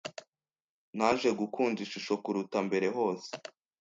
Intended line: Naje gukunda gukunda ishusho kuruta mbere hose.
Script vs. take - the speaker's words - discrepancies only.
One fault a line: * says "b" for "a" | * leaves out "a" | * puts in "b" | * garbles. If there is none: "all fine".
* leaves out "gukunda"